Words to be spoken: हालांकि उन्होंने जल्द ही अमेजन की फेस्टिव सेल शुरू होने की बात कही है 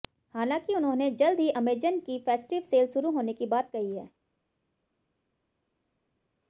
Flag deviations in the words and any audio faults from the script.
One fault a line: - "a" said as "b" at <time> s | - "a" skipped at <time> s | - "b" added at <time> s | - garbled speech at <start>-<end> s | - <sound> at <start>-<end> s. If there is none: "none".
none